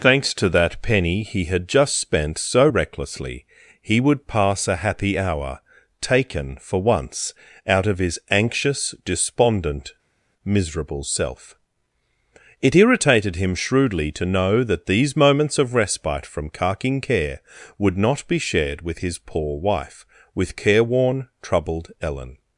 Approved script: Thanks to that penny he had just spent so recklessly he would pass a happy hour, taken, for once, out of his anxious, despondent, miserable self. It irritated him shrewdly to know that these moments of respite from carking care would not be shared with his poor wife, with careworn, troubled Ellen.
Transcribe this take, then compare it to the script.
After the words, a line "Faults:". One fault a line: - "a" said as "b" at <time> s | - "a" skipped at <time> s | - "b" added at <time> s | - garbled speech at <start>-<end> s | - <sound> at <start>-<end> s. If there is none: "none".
Thanks to that penny he had just spent so recklessly he would pass a happy hour, taken, for once, out of his anxious, despondent, miserable self. It irritated him shrewdly to know that these moments of respite from carking care would not be shared with his poor wife, with careworn, troubled Ellen.
Faults:
none